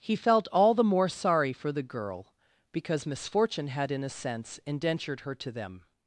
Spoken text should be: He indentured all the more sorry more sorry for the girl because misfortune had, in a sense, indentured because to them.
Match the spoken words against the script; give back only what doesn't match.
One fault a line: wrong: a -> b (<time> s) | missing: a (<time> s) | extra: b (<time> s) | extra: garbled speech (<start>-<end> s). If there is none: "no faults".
wrong: indentured -> felt (0.1 s)
missing: more sorry (1.5 s)
wrong: because -> her (5.2 s)